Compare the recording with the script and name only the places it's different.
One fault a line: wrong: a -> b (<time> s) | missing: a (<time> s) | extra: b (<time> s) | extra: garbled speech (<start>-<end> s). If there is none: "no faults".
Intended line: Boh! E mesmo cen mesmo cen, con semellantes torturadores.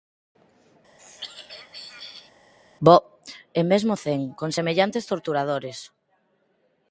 missing: mesmo cen (4.2 s)